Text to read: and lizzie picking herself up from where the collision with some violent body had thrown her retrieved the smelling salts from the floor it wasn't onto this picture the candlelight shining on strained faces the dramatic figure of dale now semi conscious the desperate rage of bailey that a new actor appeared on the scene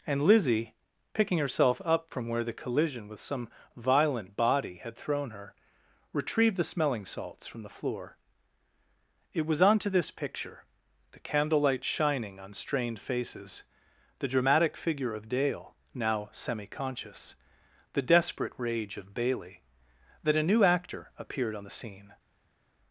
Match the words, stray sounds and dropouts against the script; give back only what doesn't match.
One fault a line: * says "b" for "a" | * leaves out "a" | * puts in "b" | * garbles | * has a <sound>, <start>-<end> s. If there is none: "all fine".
* says "was" for "wasn't"